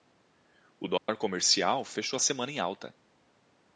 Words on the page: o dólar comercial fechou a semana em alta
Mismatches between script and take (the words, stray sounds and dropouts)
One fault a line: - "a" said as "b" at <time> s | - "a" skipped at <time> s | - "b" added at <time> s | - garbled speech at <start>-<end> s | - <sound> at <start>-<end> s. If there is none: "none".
- dropout at 1.0-1.1 s